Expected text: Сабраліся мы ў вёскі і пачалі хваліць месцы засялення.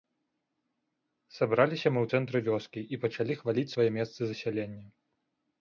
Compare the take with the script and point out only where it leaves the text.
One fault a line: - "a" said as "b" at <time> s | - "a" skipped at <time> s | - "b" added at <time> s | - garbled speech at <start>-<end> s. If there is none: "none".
- "цэнтры" added at 2.2 s
- "свае" added at 3.7 s